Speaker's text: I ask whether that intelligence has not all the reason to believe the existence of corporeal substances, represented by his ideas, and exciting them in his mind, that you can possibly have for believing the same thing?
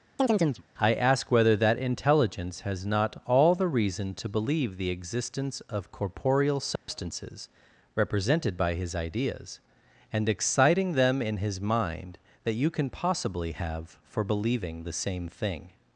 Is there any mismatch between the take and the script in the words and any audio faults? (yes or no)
yes